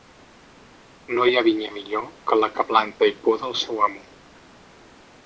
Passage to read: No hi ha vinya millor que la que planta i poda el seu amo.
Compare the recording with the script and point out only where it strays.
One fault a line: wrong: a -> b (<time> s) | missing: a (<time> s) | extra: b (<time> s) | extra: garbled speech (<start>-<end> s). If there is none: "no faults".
no faults